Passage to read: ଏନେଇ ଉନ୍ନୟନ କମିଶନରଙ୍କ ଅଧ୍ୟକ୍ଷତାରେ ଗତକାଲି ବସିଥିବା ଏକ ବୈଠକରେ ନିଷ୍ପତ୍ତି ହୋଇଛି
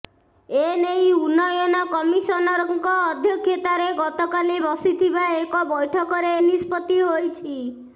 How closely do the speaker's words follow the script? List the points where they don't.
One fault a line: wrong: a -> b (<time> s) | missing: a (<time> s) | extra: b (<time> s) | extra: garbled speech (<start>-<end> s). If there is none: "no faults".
no faults